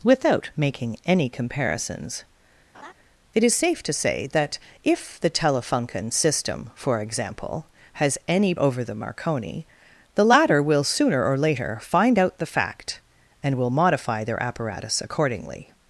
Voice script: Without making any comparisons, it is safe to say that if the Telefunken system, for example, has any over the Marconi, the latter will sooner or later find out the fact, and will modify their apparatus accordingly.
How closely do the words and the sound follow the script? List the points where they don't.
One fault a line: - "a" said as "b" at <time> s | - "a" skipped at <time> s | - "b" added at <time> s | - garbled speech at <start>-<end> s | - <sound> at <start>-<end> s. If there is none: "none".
- laugh at 2.7-2.9 s